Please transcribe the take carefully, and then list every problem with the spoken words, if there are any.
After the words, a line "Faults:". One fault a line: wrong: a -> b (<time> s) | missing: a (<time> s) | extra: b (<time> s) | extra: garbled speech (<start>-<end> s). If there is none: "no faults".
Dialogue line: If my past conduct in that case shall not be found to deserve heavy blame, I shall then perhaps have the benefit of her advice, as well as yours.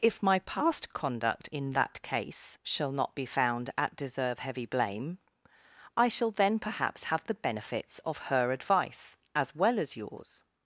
If my past conduct in that case shall not be found at deserve heavy blame, I shall then perhaps have the benefits of her advice, as well as yours.
Faults:
wrong: to -> at (3.8 s)
wrong: benefit -> benefits (7.3 s)